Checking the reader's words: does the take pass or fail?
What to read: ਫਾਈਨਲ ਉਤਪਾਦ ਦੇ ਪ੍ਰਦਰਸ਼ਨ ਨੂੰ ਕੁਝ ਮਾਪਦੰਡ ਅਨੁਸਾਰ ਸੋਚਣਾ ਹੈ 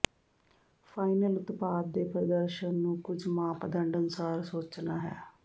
pass